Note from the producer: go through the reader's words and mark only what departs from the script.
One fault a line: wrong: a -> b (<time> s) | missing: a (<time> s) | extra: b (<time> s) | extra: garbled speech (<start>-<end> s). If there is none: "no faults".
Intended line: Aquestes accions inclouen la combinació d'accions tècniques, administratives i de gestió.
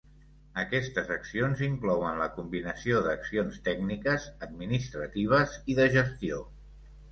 no faults